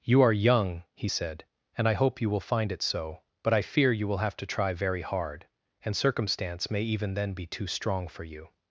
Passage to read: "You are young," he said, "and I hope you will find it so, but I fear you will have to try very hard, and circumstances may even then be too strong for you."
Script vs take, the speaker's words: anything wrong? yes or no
yes